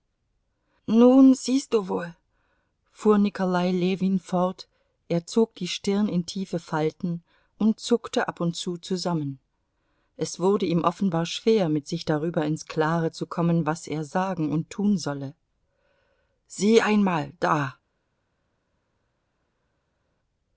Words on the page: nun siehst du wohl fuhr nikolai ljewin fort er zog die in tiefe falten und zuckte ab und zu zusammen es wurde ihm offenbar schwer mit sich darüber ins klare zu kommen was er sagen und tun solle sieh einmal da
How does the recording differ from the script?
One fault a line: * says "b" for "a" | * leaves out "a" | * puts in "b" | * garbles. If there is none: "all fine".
* puts in "stirn"